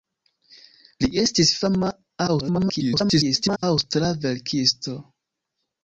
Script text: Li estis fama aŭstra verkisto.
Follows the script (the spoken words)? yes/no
no